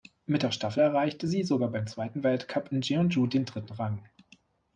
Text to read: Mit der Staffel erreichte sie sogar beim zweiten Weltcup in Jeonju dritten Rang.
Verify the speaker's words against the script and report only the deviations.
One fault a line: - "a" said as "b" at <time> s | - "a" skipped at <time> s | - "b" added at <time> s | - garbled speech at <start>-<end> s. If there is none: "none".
- "den" added at 3.3 s